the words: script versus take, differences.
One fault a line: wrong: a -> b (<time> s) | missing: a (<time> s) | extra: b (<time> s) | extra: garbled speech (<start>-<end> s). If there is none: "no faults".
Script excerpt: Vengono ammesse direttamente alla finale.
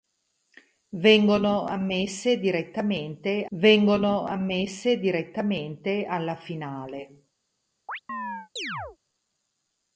extra: vengono ammesse direttamente (3.5 s)